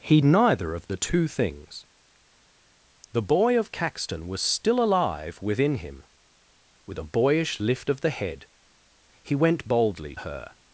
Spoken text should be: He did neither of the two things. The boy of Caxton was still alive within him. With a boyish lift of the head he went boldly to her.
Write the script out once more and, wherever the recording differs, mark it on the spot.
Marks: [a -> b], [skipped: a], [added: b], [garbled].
He [skipped: did] neither of the two things. The boy of Caxton was still alive within him. With a boyish lift of the head he went boldly [skipped: to] her.